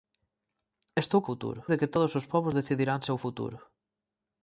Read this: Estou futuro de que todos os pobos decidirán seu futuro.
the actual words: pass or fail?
pass